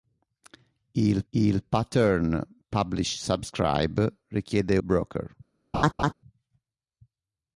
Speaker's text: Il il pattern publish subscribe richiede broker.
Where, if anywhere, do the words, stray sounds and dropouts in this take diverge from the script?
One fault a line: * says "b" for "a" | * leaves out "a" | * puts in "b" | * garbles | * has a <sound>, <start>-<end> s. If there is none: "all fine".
* has a laugh, 5.7-6.1 s